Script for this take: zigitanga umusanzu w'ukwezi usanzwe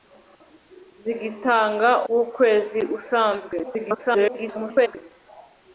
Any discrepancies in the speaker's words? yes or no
yes